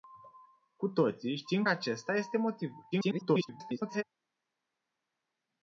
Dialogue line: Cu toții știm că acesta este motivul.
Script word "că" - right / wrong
wrong